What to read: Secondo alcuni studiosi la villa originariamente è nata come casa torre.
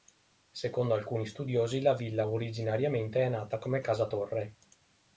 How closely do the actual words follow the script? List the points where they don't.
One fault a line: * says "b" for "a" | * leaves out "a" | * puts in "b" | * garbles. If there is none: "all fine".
all fine